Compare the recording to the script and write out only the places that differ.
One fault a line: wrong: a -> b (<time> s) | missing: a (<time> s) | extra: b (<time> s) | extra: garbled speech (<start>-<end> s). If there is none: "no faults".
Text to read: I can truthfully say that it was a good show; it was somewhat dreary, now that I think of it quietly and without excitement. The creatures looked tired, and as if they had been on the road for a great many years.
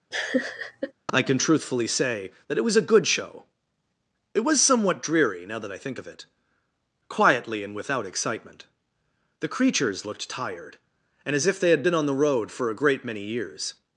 no faults